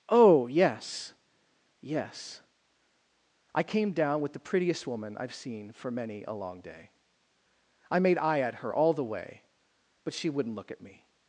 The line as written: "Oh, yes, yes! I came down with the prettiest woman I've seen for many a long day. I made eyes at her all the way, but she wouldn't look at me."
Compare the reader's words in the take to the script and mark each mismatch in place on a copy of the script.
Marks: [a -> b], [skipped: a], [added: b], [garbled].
"Oh, yes, yes! I came down with the prettiest woman I've seen for many a long day. I made [eyes -> eye] at her all the way, but she wouldn't look at me."